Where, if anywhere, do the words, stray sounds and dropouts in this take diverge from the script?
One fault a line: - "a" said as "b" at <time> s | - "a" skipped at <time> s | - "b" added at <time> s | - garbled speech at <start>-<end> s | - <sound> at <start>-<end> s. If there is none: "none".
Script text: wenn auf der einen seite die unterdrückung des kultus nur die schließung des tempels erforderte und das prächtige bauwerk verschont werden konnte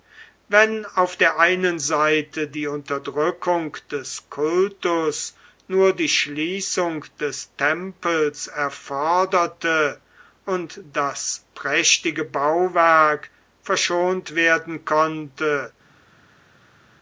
none